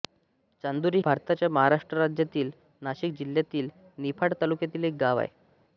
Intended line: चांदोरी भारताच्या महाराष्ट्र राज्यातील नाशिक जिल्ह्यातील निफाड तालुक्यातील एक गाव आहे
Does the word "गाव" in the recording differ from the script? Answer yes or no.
no